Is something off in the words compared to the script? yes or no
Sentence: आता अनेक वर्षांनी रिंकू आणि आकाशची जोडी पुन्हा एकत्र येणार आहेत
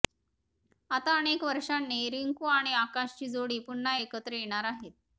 no